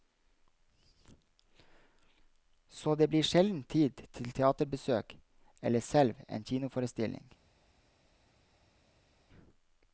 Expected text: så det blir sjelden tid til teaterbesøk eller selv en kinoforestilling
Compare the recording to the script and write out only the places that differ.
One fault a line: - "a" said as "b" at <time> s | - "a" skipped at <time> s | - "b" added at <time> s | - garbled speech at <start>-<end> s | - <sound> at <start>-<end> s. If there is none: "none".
none